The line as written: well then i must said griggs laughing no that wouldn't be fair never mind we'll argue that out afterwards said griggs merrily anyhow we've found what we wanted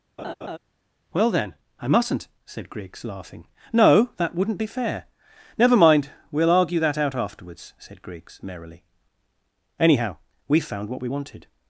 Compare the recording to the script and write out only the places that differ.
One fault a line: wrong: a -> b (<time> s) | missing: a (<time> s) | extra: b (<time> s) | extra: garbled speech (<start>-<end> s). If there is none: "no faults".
wrong: must -> mustn't (1.9 s)